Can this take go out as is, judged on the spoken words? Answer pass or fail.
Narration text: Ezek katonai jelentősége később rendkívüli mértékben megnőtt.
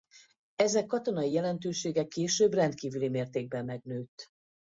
pass